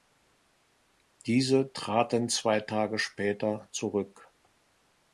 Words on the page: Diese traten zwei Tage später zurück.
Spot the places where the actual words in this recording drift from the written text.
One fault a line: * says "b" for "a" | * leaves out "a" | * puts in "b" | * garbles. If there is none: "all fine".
all fine